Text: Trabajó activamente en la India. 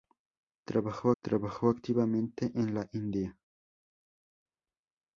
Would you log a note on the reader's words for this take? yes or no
yes